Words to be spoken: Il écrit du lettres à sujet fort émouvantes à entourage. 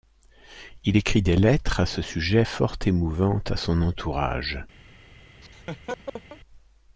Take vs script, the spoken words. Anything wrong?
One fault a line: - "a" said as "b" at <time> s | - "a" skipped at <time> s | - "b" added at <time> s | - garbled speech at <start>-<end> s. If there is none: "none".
- "du" said as "des" at 1.2 s
- "ce" added at 1.8 s
- "son" added at 3.6 s